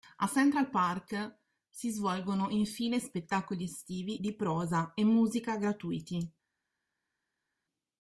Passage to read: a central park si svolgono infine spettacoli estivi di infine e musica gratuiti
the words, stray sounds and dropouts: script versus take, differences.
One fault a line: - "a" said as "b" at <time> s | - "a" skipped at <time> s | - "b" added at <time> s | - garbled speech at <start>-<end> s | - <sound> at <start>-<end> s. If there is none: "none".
- "infine" said as "prosa" at 4.4 s